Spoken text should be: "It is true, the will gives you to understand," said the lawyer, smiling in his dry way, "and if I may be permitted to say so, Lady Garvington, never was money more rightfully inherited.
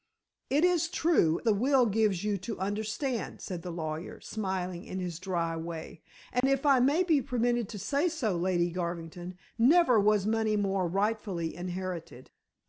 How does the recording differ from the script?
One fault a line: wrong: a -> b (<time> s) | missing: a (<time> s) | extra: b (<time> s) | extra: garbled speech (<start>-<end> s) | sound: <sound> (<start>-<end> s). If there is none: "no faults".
sound: dropout (6.4-6.4 s)